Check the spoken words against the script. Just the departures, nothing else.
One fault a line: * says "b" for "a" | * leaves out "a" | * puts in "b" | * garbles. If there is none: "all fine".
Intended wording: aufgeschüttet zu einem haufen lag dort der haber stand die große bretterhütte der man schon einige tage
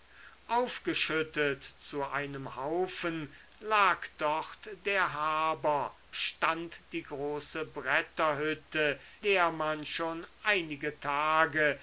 all fine